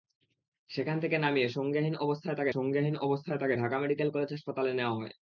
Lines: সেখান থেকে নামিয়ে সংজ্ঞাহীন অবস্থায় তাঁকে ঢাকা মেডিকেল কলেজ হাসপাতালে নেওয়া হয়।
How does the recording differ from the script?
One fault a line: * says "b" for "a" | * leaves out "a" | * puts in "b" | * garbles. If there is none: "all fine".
* puts in "সংজ্ঞাহীন অবস্থায় তাঁকে"